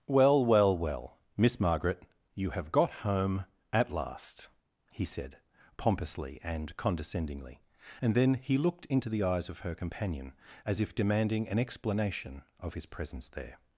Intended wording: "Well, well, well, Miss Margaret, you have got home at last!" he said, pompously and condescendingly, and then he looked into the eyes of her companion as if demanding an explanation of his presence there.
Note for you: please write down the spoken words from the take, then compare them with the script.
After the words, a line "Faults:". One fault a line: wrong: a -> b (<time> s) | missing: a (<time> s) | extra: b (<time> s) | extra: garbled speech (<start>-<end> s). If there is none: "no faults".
"Well, well, well, Miss Margaret, you have got home at last!" he said, pompously and condescendingly, and then he looked into the eyes of her companion as if demanding an explanation of his presence there.
Faults:
no faults